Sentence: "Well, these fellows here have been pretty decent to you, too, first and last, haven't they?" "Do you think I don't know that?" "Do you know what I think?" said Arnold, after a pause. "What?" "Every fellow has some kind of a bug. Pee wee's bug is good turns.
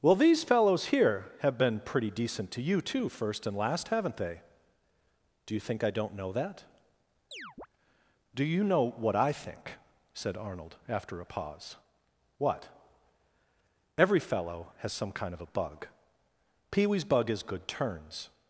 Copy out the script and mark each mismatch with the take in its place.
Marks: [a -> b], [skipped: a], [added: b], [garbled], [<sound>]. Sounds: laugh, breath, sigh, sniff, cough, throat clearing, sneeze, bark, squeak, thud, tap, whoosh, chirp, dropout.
"Well, these fellows here have been pretty decent to you, too, first and last, haven't they?" "Do you think I don't know that?" [chirp] "Do you know what I think?" said Arnold, after a pause. "What?" "Every fellow has some kind of a bug. Pee wee's bug is good turns.